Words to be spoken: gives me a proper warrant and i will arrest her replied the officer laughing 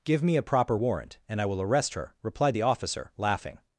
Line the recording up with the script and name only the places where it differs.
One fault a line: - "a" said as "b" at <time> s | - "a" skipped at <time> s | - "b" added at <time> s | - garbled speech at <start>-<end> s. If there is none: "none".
- "gives" said as "give" at 0.0 s